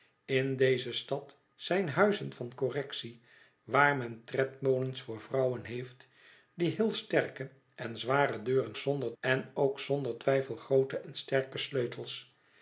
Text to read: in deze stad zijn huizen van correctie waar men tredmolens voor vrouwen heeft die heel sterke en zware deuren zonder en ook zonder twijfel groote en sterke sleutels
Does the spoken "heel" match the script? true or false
true